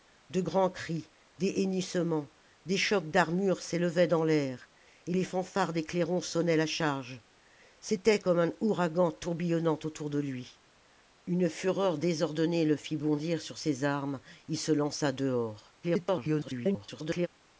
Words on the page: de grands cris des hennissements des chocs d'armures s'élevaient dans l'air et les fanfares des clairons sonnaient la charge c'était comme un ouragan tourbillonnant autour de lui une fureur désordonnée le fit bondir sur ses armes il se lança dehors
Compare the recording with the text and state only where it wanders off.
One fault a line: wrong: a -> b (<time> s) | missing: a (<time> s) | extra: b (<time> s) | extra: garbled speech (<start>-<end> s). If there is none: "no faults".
extra: garbled speech (15.8-17.3 s)